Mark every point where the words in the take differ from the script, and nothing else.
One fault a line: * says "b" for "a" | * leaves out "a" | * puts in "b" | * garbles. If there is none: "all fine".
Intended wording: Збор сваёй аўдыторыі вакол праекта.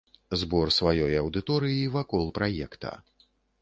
all fine